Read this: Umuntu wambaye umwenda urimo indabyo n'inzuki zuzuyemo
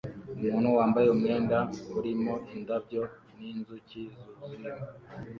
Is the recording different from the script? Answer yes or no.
no